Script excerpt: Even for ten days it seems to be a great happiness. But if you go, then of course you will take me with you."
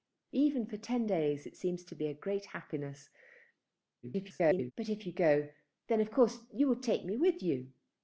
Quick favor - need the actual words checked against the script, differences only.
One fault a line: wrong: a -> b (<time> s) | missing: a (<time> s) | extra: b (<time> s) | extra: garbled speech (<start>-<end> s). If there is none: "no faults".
extra: garbled speech (4.0-4.7 s)